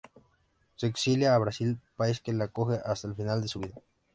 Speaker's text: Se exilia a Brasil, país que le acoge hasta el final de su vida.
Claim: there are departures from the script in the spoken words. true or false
false